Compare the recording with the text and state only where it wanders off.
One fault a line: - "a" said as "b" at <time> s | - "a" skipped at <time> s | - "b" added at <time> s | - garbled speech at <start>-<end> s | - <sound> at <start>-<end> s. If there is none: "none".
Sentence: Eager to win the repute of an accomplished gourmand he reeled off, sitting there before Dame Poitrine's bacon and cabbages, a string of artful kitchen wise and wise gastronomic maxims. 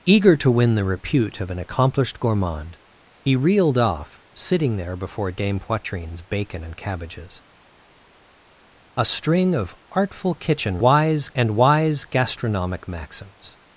none